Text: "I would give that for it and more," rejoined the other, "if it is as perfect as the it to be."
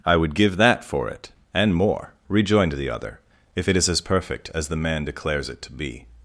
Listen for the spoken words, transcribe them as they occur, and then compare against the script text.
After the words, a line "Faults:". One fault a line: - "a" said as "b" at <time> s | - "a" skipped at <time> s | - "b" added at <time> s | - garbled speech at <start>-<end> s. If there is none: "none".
"I would give that for it and more," rejoined the other, "if it is as perfect as the man declares it to be."
Faults:
- "man declares" added at 4.7 s